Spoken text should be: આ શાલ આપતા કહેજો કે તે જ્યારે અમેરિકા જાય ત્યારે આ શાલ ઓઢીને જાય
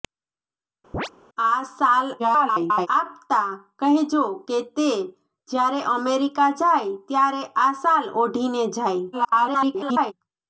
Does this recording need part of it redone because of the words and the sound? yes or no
yes